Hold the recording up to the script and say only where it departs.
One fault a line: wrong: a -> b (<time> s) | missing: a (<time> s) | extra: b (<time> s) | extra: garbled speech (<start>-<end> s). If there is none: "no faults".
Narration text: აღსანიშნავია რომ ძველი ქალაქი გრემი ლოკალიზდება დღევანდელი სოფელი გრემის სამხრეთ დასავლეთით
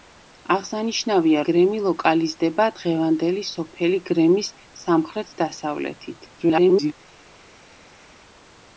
missing: რომ ძველი ქალაქი (1.4 s)
extra: garbled speech (6.4-6.9 s)